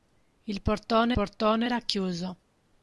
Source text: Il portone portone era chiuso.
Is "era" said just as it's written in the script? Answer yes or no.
yes